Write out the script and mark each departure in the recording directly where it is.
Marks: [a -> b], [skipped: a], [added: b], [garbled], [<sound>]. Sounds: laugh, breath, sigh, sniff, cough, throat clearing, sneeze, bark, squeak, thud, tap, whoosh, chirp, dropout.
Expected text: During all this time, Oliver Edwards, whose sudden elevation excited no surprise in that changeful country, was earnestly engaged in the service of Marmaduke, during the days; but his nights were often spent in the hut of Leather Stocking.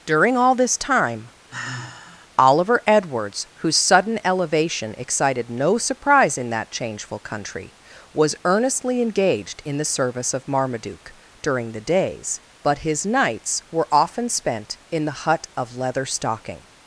During all this time, [sigh] Oliver Edwards, whose sudden elevation excited no surprise in that changeful country, was earnestly engaged in the service of Marmaduke, during the days; but his nights were often spent in the hut of Leather Stocking.